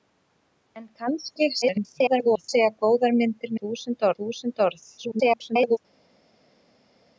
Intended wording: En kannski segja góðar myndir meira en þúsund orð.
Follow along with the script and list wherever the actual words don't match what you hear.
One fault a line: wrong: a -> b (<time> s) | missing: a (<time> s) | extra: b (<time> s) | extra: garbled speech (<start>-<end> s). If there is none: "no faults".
extra: garbled speech (1.6-2.5 s)
wrong: meira -> þúsund (3.6 s)
extra: garbled speech (5.0-5.8 s)